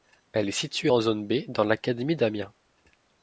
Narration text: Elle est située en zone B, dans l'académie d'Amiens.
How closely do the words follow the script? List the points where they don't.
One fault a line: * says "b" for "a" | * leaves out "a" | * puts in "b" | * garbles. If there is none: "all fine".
all fine